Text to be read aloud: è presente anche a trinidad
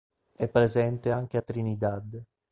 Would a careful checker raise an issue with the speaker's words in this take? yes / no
no